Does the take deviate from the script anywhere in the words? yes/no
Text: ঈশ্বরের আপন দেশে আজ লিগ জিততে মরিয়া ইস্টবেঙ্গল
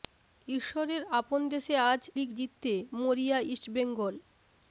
no